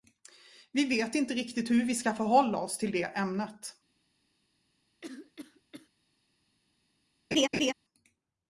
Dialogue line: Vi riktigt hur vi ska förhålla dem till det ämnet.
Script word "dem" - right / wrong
wrong